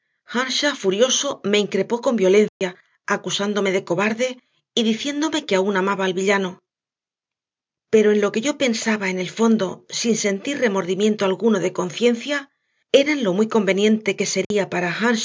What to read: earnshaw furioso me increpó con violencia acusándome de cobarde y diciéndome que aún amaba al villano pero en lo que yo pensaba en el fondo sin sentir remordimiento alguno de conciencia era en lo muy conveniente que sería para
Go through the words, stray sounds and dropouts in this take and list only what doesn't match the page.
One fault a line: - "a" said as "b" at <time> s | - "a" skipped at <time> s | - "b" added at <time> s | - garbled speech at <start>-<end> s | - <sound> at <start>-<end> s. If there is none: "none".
- dropout at 2.5-2.6 s
- dropout at 14.4-14.5 s